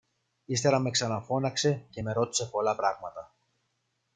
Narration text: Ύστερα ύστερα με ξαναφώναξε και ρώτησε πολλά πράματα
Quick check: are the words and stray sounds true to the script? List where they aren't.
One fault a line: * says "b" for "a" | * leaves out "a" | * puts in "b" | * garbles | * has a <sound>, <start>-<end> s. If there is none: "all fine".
* leaves out "ύστερα"
* puts in "με"